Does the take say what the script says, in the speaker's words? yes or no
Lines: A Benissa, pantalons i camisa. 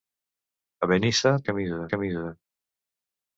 no